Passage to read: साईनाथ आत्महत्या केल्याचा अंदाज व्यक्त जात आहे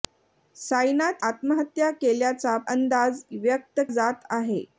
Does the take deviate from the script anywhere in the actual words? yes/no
no